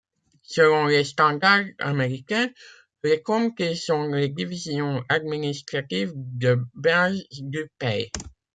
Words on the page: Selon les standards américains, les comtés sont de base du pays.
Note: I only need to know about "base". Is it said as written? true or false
true